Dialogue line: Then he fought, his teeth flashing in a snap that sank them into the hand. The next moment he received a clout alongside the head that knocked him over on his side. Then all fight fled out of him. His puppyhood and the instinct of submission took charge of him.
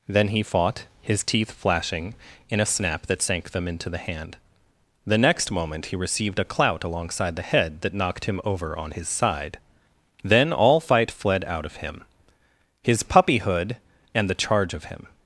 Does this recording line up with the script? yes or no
no